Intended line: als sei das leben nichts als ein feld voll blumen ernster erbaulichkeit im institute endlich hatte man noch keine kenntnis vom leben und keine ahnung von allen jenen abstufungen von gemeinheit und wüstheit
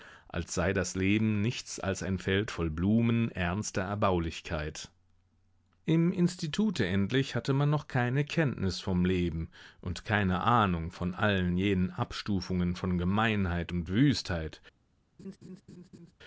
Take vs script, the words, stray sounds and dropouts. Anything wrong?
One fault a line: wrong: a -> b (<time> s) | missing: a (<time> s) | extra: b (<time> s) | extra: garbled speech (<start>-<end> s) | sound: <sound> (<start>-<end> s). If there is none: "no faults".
sound: laugh (15.2-16.1 s)